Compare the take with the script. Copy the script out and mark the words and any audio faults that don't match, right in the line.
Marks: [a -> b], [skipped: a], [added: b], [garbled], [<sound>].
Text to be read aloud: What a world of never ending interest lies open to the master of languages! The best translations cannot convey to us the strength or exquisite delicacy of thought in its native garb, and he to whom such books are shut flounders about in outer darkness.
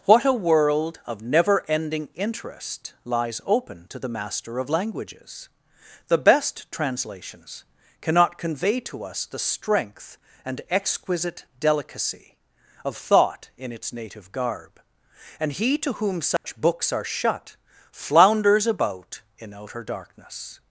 What a world of never ending interest lies open to the master of languages! The best translations cannot convey to us the strength [or -> and] exquisite delicacy of thought in its native garb, and he to whom such [dropout] books are shut flounders about in outer darkness.